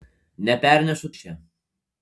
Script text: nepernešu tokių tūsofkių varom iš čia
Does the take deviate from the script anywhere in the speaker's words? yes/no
yes